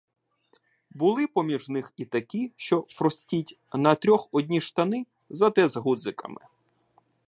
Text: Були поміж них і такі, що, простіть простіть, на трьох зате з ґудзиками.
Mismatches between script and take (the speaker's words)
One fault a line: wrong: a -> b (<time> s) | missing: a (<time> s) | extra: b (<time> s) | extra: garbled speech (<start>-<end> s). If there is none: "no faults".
missing: простіть (3.6 s)
extra: одні штани (4.3 s)